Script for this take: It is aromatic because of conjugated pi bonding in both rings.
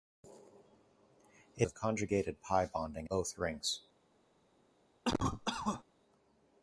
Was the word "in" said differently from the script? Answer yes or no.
yes